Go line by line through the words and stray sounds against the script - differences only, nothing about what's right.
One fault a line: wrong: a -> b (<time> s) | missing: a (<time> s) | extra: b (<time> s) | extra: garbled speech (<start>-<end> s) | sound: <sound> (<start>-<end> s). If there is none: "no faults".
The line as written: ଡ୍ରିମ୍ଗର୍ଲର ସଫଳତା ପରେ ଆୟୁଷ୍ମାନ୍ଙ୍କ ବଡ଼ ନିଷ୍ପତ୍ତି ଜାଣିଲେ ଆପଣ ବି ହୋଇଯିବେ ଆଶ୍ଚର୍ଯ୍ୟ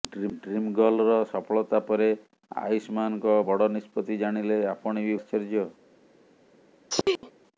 missing: ହୋଇଯିବେ (5.2 s)
sound: sneeze (6.9-7.3 s)